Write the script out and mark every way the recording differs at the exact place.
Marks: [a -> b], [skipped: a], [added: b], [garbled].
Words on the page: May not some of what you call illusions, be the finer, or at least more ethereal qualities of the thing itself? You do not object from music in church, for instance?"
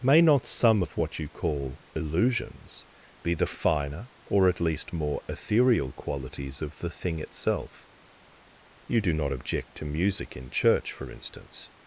May not some of what you call illusions, be the finer, or at least more ethereal qualities of the thing itself? You do not object [from -> to] music in church, for instance?"